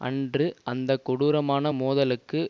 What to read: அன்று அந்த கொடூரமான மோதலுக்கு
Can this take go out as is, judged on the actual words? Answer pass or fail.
pass